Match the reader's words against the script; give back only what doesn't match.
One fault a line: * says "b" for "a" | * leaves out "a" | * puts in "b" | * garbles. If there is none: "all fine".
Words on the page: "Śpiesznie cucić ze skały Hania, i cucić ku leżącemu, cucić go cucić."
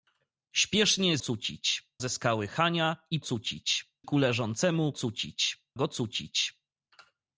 all fine